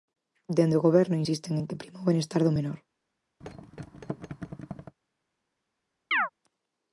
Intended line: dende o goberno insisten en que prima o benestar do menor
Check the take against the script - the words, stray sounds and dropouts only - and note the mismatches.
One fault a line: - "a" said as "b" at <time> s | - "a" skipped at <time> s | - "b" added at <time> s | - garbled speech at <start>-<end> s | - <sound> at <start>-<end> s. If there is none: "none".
- thud at 3.4-5.0 s
- chirp at 6.1-6.3 s